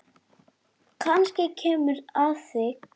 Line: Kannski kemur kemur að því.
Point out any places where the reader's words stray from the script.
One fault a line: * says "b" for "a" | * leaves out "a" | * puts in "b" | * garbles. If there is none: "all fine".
* leaves out "kemur"